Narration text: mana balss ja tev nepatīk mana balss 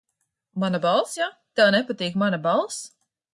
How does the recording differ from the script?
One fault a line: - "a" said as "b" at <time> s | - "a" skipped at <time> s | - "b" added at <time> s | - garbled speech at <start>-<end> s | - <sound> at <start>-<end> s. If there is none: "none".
none